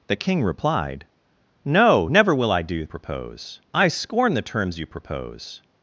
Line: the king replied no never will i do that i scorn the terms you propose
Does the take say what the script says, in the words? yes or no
no